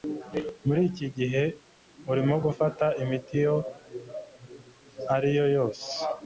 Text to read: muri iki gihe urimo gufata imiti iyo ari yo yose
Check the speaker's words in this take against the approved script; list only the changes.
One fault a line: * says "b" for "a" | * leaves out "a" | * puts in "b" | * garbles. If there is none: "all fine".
all fine